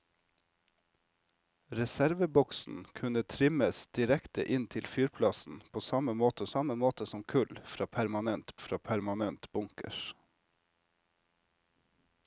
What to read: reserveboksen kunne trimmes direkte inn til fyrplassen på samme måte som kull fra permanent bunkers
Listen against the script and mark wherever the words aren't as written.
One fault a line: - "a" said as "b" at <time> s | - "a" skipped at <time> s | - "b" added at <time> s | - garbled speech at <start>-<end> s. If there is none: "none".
- "samme måte" added at 6.5 s
- "fra permanent" added at 8.7 s